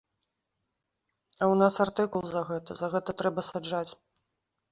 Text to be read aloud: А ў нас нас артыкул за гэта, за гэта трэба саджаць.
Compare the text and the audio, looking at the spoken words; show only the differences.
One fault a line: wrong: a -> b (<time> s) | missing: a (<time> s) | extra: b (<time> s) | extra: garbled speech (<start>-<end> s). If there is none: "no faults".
missing: нас (1.8 s)